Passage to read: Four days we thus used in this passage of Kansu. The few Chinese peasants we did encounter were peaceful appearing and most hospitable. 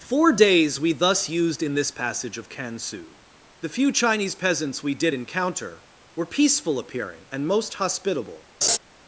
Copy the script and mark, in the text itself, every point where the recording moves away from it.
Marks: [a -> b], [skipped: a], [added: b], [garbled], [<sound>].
Four days we thus used in this passage of Kansu. The few Chinese peasants we did encounter were peaceful appearing and most hospitable. [laugh]